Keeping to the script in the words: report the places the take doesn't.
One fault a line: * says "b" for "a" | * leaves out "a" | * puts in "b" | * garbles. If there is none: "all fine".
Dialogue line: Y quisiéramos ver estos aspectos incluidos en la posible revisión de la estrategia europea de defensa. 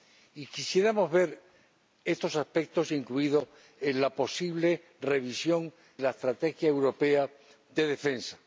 * leaves out "de"